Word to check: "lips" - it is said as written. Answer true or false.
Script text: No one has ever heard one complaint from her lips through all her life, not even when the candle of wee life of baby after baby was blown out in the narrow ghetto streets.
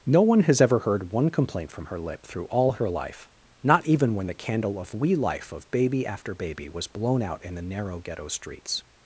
false